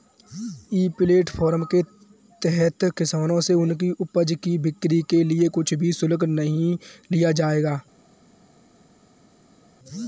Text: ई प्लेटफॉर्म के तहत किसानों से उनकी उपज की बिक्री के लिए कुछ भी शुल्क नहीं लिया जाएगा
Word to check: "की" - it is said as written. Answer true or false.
true